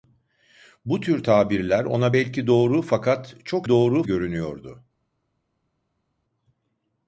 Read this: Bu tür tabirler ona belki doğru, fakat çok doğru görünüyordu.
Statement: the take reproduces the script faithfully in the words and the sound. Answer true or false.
true